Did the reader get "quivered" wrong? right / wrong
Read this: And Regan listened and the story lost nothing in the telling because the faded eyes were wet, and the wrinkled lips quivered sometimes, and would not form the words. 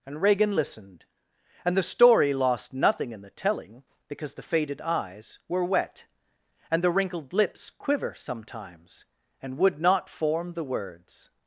wrong